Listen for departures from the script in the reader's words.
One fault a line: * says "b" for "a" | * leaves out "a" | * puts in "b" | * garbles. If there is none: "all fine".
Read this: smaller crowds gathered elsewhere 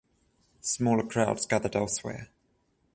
all fine